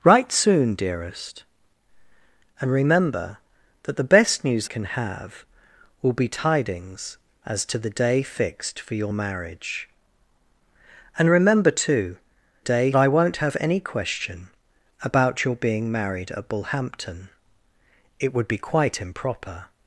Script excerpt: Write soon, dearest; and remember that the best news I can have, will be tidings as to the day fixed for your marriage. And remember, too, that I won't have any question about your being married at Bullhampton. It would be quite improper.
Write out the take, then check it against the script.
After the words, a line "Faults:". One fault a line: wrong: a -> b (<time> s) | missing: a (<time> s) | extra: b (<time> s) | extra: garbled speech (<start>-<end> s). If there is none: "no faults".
Write soon, dearest; and remember that the best news can have, will be tidings as to the day fixed for your marriage. And remember, too, day I won't have any question about your being married at Bullhampton. It would be quite improper.
Faults:
missing: I (4.7 s)
wrong: that -> day (12.6 s)